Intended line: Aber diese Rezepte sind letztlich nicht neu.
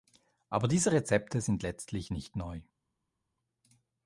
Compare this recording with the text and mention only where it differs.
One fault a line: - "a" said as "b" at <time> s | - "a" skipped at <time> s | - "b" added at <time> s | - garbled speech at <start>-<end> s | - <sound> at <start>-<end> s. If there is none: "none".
none